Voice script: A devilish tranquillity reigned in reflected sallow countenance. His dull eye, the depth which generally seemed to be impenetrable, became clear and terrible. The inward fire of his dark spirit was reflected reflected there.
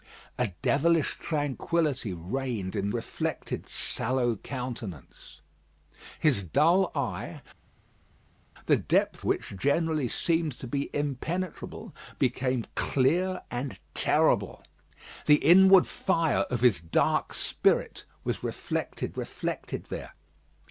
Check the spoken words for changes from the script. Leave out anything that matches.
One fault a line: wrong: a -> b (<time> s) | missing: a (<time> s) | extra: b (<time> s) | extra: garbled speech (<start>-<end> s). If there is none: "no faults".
no faults